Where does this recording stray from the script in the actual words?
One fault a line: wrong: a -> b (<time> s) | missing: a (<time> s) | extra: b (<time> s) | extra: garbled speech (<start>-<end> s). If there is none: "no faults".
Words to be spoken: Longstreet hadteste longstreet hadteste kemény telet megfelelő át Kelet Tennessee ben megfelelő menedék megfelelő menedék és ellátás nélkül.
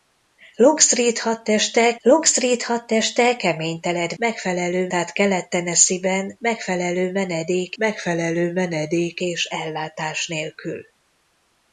no faults